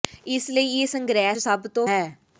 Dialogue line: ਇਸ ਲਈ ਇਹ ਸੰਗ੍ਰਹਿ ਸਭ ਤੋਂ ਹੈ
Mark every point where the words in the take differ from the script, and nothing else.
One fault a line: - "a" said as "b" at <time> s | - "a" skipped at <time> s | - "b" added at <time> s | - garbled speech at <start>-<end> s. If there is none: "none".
none